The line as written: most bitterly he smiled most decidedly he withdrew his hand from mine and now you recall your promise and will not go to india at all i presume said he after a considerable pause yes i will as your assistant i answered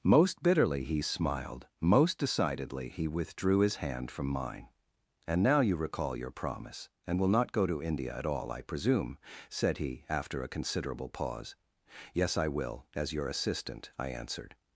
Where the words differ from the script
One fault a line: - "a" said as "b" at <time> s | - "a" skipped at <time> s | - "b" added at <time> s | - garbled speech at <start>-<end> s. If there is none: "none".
none